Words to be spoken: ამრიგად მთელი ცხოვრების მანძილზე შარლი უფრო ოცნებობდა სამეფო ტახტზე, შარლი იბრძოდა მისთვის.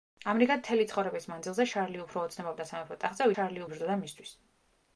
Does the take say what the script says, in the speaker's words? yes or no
yes